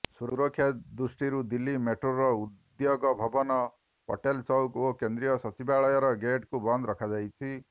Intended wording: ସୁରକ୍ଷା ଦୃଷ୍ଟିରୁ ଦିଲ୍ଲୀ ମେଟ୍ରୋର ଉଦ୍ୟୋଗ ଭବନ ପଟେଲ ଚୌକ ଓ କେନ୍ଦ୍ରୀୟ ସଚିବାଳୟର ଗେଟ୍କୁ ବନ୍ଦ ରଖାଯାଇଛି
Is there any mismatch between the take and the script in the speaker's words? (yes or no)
no